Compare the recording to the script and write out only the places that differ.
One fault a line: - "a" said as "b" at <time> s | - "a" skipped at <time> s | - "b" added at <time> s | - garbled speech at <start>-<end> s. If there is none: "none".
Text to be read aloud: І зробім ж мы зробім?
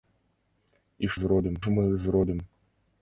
none